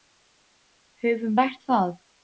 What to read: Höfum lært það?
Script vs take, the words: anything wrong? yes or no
no